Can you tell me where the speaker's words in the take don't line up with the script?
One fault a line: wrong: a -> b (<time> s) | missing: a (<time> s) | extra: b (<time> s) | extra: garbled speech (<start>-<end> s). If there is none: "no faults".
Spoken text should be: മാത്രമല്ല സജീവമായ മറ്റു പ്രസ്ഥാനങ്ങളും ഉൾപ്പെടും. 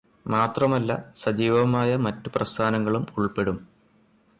no faults